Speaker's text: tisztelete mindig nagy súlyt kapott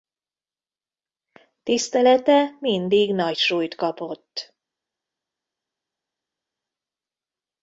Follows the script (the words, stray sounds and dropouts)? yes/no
yes